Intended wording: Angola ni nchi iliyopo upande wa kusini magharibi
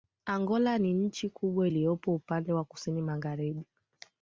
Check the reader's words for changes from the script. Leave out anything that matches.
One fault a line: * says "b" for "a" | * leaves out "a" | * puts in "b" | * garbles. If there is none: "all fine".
* puts in "kubwa"